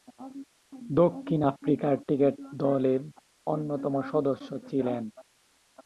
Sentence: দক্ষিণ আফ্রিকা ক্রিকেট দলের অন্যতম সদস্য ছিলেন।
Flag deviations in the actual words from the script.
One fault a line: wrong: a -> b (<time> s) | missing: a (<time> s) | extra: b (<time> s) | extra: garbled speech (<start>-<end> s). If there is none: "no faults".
no faults